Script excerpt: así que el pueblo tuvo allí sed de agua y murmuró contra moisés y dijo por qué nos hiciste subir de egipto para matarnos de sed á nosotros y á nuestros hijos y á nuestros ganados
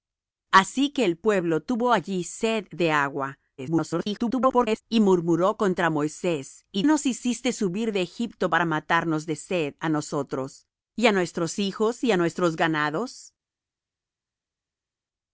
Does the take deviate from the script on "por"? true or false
true